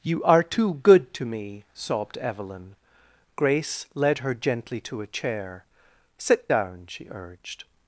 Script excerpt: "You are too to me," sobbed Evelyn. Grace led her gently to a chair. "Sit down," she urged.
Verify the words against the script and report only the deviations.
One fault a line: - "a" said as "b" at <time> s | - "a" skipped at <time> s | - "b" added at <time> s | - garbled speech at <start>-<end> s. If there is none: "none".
- "good" added at 0.8 s